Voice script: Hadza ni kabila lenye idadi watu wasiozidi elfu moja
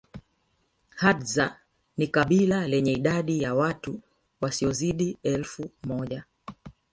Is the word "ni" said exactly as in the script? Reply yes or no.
yes